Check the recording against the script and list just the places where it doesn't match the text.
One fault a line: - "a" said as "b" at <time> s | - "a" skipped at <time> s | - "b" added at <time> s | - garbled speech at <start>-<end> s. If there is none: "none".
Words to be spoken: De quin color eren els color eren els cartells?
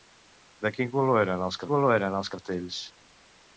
none